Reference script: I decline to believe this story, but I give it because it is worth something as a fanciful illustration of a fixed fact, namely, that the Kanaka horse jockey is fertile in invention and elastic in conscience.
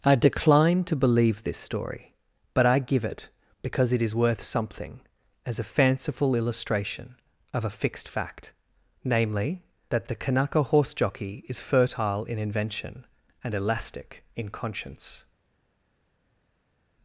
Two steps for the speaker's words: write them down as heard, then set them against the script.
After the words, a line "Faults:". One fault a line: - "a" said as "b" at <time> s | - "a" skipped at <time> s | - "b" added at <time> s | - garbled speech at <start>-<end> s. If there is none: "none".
I decline to believe this story, but I give it because it is worth something as a fanciful illustration of a fixed fact, namely, that the Kanaka horse jockey is fertile in invention and elastic in conscience.
Faults:
none